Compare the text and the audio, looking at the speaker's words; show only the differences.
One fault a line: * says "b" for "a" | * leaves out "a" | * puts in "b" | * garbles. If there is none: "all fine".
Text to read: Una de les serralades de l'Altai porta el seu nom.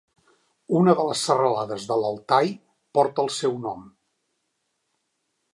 all fine